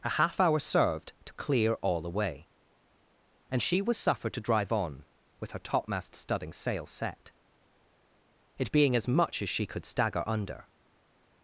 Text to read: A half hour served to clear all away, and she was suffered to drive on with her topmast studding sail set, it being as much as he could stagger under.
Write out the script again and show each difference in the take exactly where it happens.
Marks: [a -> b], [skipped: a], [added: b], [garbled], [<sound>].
A half hour served to clear all away, and she was suffered to drive on with her topmast studding sail set, it being as much as [he -> she] could stagger under.